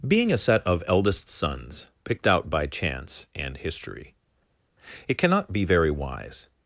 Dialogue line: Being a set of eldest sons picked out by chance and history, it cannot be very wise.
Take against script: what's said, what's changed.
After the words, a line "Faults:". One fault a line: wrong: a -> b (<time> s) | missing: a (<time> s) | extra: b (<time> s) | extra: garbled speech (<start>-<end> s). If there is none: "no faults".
Being a set of eldest sons picked out by chance and history, it cannot be very wise.
Faults:
no faults